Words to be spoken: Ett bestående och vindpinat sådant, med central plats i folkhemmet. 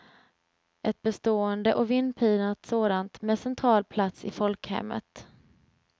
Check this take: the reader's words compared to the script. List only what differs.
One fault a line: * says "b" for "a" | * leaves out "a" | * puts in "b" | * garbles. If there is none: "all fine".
all fine